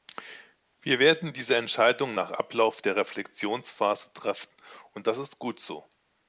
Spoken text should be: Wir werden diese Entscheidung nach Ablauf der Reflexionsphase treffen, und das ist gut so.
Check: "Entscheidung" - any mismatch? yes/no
no